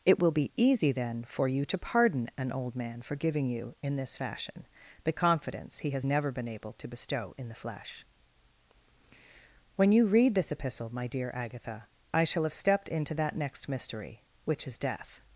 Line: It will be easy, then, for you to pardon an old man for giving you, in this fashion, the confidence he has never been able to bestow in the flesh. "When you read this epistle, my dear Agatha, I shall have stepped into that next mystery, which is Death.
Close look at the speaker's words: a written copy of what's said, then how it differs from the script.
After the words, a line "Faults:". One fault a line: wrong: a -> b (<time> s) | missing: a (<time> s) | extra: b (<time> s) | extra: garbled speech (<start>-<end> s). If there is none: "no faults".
It will be easy, then, for you to pardon an old man for giving you, in this fashion, the confidence he has never been able to bestow in the flesh. "When you read this epistle, my dear Agatha, I shall have stepped into that next mystery, which is Death.
Faults:
no faults